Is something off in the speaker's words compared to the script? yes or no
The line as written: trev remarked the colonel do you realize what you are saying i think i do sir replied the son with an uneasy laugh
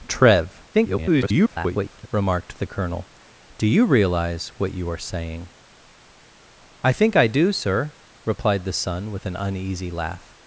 yes